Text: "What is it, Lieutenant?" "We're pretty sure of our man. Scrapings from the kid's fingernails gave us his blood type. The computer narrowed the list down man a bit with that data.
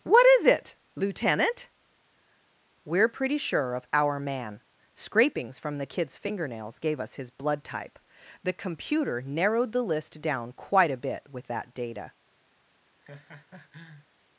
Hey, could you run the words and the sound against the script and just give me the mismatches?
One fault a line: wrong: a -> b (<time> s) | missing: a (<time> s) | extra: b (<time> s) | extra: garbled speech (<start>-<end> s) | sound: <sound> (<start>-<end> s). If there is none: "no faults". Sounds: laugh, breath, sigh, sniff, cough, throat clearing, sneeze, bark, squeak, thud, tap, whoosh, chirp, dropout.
wrong: man -> quite (10.5 s)
sound: laugh (13.0-14.1 s)